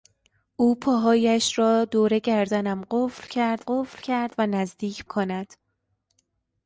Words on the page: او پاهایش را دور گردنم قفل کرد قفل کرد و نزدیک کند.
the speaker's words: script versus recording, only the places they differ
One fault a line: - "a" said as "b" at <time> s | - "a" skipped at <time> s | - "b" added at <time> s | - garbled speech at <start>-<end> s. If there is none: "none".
none